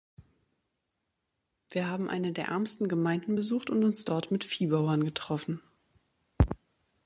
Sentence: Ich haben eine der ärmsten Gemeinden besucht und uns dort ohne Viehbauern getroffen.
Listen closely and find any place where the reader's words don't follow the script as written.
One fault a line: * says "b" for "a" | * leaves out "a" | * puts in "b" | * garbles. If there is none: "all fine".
* says "Wir" for "Ich"
* says "mit" for "ohne"